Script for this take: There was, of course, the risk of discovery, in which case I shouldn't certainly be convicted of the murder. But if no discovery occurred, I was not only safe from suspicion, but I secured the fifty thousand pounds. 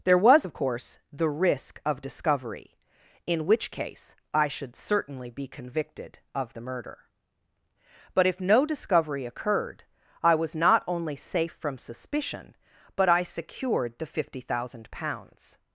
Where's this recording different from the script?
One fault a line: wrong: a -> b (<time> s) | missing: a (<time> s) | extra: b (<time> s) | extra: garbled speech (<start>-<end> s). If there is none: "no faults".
wrong: shouldn't -> should (4.5 s)